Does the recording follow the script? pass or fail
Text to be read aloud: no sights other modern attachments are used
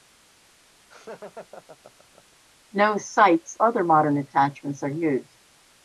pass